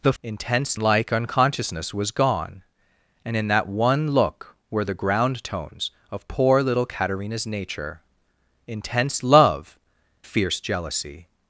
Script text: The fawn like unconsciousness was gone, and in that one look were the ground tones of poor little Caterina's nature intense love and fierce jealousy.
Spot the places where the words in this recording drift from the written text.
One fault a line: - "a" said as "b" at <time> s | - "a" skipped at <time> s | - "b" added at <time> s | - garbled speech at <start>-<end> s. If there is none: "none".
- "fawn" said as "intense" at 0.2 s
- "and" skipped at 9.8 s